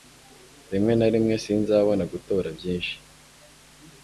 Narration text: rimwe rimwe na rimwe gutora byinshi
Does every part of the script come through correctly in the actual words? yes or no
no